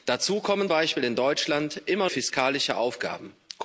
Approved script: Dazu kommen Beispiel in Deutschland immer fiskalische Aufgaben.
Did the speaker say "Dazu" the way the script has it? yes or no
yes